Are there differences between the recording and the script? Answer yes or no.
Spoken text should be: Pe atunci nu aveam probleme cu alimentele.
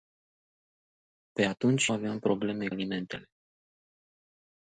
yes